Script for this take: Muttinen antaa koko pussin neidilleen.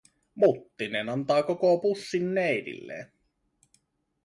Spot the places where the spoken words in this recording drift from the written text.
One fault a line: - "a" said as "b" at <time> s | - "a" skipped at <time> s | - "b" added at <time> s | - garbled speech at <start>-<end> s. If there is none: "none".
none